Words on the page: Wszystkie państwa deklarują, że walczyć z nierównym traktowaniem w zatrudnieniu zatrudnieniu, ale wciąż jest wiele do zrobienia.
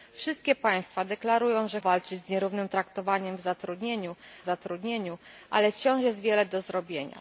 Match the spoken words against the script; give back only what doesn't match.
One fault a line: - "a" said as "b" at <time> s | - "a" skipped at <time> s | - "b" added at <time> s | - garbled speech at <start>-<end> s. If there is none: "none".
none